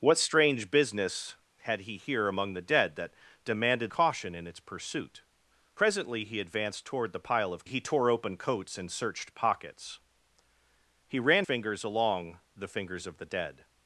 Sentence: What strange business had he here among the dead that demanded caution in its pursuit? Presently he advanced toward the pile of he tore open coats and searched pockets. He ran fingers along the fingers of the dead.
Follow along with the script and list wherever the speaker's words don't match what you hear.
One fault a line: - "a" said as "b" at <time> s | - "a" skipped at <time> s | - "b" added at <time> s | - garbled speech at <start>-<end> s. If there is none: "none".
none